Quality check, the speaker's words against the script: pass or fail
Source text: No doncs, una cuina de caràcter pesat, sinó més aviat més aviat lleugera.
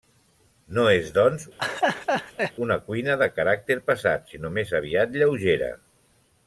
fail